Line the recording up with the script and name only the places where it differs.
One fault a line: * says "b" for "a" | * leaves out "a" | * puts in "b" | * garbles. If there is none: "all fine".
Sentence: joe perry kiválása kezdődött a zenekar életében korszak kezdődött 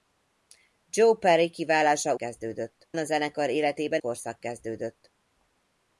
all fine